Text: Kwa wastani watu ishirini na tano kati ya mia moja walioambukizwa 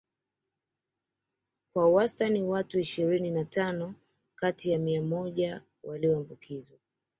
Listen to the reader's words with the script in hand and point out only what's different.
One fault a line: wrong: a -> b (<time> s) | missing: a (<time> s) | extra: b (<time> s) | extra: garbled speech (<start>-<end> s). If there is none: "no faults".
no faults